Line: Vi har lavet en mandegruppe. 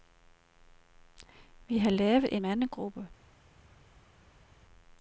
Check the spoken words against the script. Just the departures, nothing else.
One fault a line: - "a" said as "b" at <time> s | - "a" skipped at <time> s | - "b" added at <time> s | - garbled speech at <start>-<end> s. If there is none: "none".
- "en" skipped at 2.4 s